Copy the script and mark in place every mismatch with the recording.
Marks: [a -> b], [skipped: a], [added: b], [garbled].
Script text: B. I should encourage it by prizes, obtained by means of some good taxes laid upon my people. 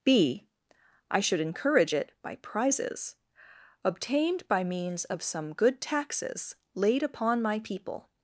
B. I should encourage it by prizes, obtained by means of some good taxes laid upon my people.